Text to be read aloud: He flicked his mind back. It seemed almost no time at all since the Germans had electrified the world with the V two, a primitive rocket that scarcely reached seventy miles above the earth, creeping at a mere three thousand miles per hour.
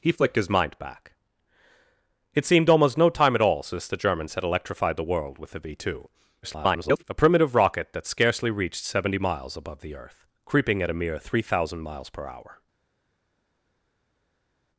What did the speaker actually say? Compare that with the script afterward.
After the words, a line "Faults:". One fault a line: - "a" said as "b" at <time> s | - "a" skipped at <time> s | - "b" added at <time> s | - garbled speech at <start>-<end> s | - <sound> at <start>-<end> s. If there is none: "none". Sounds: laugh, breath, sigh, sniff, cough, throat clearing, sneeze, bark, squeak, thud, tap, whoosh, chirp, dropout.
He flicked his mind back. It seemed almost no time at all since the Germans had electrified the world with the V two, [garbled] a primitive rocket that scarcely reached seventy miles above the earth, creeping at a mere three thousand miles per hour.
Faults:
- garbled speech at 6.4-7.0 s